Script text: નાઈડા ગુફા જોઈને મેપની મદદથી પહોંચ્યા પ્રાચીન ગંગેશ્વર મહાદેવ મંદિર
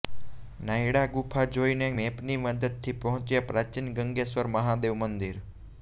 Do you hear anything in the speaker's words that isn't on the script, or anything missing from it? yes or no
no